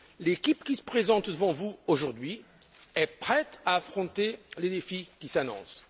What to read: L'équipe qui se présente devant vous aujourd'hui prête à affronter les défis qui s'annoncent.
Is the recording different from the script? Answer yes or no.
yes